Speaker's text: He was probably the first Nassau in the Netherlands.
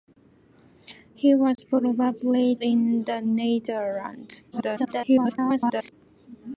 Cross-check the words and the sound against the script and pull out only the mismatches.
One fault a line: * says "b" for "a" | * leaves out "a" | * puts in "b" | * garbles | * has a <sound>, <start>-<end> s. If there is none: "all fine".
* has a dropout, 1.6-1.6 s
* leaves out "the first Nassau"
* garbles